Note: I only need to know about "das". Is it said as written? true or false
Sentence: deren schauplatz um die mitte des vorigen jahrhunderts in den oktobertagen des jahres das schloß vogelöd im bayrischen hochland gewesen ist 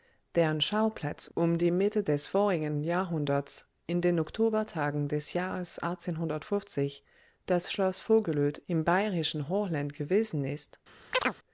true